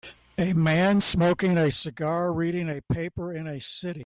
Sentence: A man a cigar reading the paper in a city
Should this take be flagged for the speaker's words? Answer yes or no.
yes